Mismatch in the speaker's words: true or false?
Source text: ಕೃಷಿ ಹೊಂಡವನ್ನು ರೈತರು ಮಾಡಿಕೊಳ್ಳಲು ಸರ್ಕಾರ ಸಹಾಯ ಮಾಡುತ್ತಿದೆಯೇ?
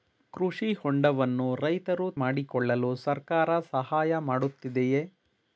false